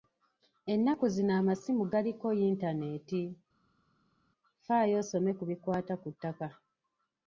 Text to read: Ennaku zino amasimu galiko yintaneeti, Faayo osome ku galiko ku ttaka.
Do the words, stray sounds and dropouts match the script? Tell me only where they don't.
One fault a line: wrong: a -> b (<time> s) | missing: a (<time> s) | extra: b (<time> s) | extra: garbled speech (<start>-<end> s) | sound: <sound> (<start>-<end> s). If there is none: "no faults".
wrong: galiko -> bikwata (5.5 s)